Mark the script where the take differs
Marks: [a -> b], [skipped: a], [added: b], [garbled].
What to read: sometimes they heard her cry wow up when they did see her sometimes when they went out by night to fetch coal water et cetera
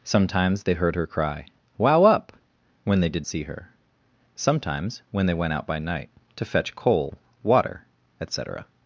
sometimes they heard her cry wow up when they did see her sometimes when they went out by night to fetch coal water et cetera